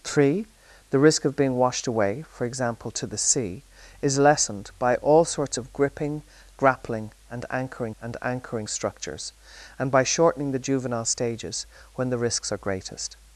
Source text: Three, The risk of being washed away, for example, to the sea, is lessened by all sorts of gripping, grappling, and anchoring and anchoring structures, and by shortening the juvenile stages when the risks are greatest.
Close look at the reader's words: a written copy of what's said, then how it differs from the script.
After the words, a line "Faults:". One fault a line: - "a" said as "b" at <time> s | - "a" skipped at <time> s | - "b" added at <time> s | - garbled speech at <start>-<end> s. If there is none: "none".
Three, The risk of being washed away, for example, to the sea, is lessened by all sorts of gripping, grappling, and anchoring and anchoring structures, and by shortening the juvenile stages when the risks are greatest.
Faults:
none